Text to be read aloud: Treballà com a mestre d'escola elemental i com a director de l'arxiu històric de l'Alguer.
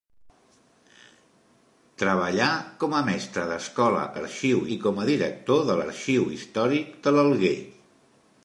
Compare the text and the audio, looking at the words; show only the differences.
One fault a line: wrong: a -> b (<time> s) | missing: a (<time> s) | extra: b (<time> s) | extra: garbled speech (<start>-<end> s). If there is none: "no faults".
wrong: elemental -> l'arxiu (4.1 s)